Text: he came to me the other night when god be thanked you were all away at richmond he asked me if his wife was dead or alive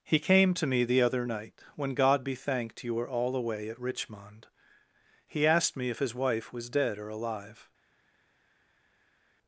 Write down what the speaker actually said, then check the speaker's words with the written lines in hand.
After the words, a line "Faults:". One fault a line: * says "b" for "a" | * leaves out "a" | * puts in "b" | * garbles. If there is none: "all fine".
he came to me the other night when god be thanked you were all away at richmond he asked me if his wife was dead or alive
Faults:
all fine